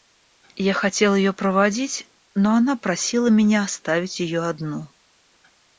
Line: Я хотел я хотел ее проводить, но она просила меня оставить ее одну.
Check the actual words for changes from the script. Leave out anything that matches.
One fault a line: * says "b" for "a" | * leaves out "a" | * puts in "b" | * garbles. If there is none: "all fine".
* leaves out "я хотел"